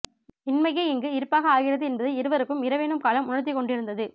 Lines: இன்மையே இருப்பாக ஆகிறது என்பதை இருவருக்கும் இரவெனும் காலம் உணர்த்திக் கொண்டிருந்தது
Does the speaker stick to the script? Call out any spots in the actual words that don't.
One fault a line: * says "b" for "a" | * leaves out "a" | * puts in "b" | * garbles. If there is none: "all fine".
* puts in "இங்கு"